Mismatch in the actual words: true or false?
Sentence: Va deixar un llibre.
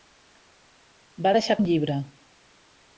false